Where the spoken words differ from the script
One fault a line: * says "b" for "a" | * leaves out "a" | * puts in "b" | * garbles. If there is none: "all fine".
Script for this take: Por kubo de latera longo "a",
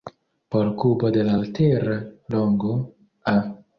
all fine